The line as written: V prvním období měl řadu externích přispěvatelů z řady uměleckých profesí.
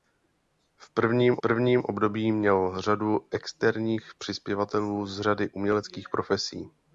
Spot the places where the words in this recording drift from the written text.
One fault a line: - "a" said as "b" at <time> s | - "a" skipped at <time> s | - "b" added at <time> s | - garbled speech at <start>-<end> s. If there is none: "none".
- "prvním" added at 1.4 s